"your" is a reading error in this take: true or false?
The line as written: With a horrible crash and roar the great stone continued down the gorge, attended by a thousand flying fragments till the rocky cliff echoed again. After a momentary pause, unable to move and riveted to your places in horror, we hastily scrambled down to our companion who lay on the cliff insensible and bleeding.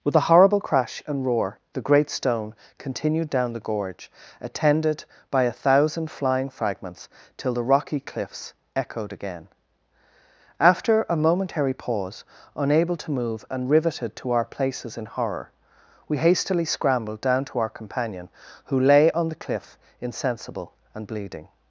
true